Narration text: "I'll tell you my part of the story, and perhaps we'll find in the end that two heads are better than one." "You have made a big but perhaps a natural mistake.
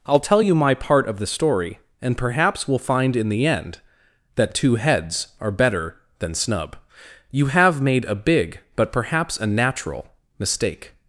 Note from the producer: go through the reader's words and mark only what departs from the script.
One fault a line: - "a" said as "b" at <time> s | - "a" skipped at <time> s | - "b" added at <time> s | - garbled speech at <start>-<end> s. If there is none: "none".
- "one" said as "snub" at 6.3 s